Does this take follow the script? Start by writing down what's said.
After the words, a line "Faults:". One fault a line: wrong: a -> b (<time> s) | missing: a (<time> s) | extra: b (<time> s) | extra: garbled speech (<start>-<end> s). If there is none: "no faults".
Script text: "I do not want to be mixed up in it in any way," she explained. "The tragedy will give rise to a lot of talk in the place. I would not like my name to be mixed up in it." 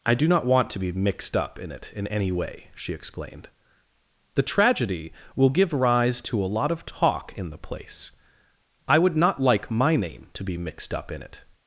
"I do not want to be mixed up in it in any way," she explained. "The tragedy will give rise to a lot of talk in the place. I would not like my name to be mixed up in it."
Faults:
no faults